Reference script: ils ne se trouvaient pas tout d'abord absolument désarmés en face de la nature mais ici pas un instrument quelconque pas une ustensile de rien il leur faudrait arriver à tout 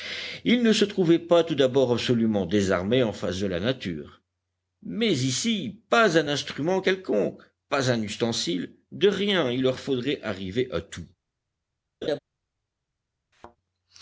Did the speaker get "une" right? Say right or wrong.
wrong